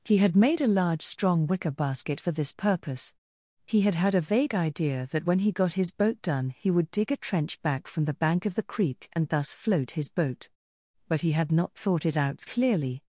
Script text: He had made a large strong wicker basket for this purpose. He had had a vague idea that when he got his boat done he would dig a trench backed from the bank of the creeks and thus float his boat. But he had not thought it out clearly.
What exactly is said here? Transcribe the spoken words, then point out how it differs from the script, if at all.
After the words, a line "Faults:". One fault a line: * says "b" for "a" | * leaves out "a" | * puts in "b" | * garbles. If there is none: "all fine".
He had made a large strong wicker basket for this purpose. He had had a vague idea that when he got his boat done he would dig a trench back from the bank of the creek and thus float his boat. But he had not thought it out clearly.
Faults:
* says "back" for "backed"
* says "creek" for "creeks"